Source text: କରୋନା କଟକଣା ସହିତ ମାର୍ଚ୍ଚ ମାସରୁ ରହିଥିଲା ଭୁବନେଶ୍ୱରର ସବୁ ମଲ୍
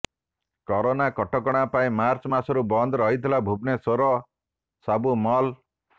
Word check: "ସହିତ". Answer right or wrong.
wrong